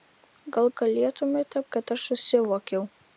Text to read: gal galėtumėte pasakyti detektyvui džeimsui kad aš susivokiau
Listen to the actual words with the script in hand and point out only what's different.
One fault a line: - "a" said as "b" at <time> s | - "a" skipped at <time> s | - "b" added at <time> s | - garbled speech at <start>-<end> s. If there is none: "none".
- "pasakyti detektyvui džeimsui" skipped at 1.6 s